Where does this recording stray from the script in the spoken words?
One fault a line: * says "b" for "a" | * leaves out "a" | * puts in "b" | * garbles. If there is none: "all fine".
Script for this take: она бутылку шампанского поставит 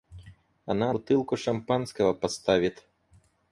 all fine